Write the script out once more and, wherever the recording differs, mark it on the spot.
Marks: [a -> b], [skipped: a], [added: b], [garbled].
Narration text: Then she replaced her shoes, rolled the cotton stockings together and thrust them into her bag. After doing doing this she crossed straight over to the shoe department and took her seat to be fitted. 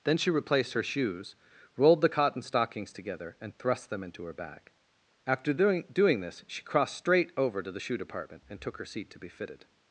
Then she replaced her shoes, rolled the cotton stockings together and thrust them into her bag. After doing doing this she crossed straight over to the shoe department and took her seat to be fitted.